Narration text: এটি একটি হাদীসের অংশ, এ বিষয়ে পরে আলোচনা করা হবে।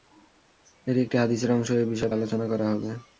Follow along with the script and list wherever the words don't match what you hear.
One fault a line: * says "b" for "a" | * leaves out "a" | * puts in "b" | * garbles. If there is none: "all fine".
* leaves out "পরে"